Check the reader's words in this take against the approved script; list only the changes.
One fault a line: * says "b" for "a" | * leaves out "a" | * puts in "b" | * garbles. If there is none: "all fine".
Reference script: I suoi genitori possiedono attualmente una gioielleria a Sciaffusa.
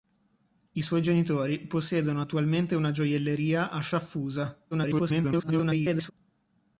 * garbles